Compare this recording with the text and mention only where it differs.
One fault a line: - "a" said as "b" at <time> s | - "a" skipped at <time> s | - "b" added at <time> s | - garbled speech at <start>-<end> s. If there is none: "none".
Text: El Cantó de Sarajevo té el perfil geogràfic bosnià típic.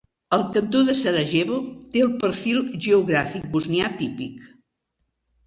none